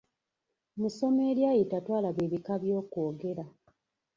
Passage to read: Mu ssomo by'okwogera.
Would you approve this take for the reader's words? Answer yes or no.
no